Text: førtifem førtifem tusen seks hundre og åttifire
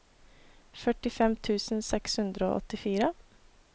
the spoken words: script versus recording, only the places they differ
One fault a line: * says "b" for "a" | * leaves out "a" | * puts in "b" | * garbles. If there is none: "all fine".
* leaves out "førtifem"